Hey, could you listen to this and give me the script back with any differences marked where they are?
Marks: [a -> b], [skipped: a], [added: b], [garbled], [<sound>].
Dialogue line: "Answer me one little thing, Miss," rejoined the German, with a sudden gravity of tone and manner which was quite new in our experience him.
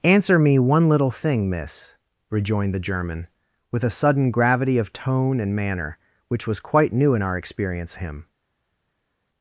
"Answer me one little thing, Miss," rejoined the German, with a sudden gravity of tone and manner which was quite new in our experience him.